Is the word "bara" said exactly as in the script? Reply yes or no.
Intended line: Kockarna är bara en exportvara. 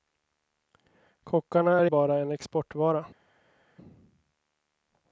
yes